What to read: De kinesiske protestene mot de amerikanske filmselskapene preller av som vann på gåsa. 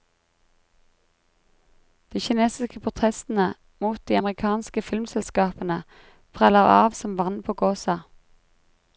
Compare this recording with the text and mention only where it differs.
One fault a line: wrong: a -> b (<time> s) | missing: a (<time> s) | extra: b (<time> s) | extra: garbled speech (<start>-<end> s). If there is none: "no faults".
no faults